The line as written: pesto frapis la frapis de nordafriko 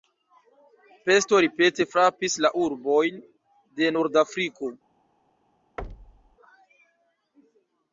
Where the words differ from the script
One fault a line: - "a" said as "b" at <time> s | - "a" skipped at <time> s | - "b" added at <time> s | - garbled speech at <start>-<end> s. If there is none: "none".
- "ripete" added at 1.4 s
- "frapis" said as "urbojn" at 2.6 s